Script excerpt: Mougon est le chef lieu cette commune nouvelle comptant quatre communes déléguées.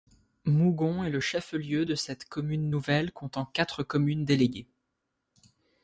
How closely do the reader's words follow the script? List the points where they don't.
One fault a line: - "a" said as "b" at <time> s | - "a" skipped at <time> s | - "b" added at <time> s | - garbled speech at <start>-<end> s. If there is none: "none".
- "de" added at 1.8 s